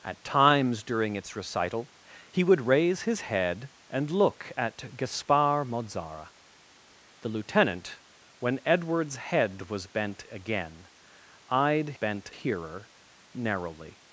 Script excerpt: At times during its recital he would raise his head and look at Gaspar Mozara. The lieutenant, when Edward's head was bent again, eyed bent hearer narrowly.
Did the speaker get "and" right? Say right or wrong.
right